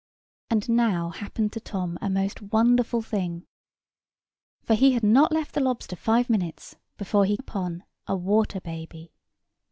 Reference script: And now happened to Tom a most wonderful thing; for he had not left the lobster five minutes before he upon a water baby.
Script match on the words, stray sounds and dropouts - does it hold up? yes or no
yes